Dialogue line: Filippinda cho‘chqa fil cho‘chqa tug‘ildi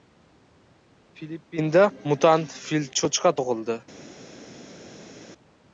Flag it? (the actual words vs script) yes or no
yes